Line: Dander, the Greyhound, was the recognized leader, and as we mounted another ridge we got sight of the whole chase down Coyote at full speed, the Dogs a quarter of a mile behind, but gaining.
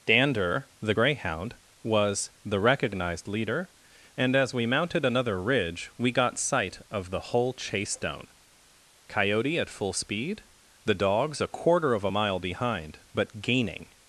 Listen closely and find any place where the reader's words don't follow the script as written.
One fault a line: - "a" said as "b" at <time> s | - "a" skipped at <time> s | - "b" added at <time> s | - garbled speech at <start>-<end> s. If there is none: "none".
none